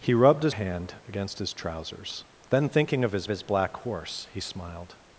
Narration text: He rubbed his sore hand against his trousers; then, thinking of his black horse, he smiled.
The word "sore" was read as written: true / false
false